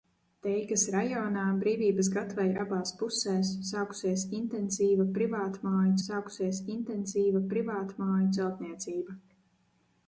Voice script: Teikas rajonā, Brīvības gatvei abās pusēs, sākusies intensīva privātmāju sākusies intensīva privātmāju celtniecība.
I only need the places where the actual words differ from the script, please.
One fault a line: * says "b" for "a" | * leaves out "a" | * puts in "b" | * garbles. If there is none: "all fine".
all fine